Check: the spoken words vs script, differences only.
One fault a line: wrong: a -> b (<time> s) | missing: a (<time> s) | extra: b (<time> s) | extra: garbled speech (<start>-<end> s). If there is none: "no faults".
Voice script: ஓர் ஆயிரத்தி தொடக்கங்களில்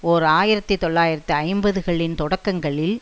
extra: தொள்ளாயிரத்து ஐம்பதுகளின் (0.7 s)